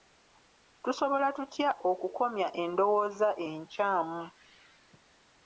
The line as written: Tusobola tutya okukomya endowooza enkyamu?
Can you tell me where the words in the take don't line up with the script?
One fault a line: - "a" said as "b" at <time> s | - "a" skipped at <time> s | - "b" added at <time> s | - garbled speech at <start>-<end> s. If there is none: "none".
none